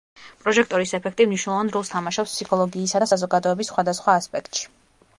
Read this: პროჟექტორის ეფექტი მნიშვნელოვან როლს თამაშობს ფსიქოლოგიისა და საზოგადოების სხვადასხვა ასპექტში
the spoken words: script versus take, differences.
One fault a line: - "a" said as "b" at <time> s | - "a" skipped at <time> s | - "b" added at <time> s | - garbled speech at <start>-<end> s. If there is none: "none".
none